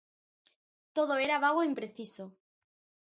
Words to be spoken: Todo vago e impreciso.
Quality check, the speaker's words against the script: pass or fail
fail